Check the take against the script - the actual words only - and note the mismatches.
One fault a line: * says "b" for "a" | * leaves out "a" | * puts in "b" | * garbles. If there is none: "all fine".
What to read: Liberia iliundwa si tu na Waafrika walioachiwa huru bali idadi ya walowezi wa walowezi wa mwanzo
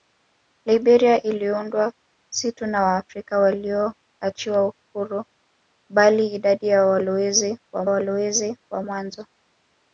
all fine